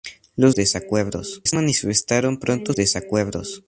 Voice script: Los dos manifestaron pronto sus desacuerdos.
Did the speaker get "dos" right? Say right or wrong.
wrong